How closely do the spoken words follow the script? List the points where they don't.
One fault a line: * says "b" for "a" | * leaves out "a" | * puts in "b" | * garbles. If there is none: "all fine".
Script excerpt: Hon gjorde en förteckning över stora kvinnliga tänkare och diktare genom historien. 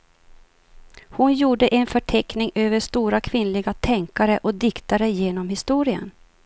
all fine